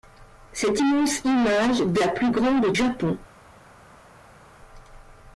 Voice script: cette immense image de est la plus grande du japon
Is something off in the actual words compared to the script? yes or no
yes